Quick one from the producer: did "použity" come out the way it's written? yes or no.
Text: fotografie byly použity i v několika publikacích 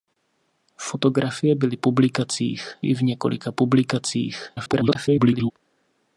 no